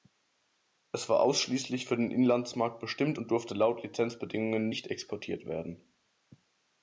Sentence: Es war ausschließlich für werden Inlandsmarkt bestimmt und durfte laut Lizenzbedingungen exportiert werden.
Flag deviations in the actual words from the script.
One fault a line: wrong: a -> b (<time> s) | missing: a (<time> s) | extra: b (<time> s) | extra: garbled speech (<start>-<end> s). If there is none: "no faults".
wrong: werden -> den (1.9 s)
extra: nicht (4.7 s)